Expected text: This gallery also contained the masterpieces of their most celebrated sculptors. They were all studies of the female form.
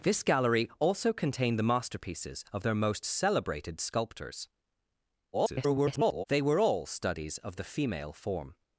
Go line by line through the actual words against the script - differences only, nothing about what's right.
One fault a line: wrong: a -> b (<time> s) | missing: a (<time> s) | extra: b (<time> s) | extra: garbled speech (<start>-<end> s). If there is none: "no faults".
extra: garbled speech (5.3-6.2 s)